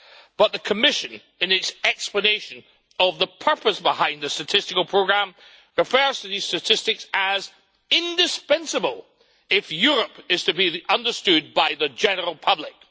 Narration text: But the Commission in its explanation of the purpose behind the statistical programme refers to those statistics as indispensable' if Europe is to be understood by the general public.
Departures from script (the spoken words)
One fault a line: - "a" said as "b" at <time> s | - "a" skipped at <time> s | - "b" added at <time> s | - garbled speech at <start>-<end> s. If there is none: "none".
- "those" said as "these" at 6.3 s